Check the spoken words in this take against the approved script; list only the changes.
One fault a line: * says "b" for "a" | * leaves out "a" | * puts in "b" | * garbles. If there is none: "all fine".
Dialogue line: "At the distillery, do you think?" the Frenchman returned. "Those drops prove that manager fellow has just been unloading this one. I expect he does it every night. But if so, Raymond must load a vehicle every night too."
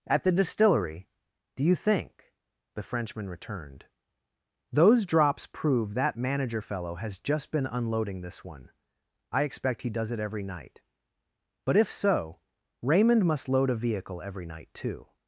all fine